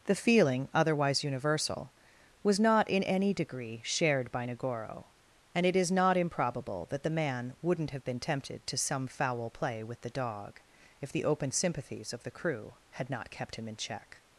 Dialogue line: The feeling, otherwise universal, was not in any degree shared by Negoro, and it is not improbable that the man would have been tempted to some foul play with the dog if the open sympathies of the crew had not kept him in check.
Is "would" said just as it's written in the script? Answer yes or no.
no